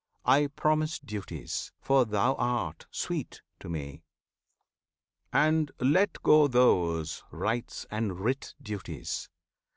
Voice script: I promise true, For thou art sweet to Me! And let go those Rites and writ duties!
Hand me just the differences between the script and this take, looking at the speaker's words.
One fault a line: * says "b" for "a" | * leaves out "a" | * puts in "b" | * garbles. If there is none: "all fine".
* says "duties" for "true"